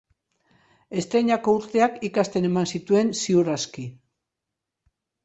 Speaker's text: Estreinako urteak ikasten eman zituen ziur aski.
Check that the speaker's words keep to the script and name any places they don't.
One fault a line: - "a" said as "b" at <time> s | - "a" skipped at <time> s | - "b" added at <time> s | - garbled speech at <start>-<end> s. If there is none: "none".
none